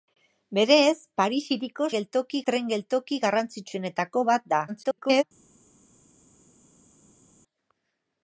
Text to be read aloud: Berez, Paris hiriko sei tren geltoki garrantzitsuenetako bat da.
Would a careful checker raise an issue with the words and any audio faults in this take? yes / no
yes